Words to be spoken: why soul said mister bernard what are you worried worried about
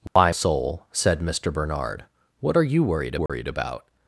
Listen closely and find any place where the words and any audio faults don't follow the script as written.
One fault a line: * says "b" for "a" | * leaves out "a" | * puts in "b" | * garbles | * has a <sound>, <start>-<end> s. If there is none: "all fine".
* has a dropout, 0.1-0.2 s
* has a dropout, 3.3-3.3 s